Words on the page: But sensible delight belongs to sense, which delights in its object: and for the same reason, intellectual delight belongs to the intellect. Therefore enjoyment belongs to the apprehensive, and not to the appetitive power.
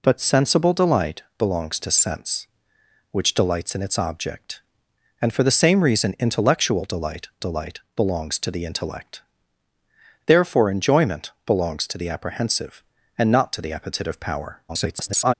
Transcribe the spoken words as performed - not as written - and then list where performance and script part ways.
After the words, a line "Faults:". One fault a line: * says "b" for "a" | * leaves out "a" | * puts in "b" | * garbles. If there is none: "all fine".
But sensible delight belongs to sense, which delights in its object: and for the same reason, intellectual delight delight belongs to the intellect. Therefore enjoyment belongs to the apprehensive, and not to the appetitive power. [garbled]
Faults:
* puts in "delight"
* garbles